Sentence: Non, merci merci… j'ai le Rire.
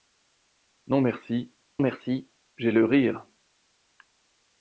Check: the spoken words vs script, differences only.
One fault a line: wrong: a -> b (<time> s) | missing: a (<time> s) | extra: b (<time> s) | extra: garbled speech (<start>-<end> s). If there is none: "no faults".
no faults